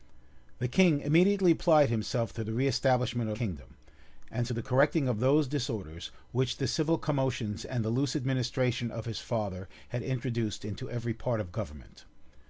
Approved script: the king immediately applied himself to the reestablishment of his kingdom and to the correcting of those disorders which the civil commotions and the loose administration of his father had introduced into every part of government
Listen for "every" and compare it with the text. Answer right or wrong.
right